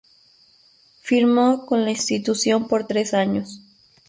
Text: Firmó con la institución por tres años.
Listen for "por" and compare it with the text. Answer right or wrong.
right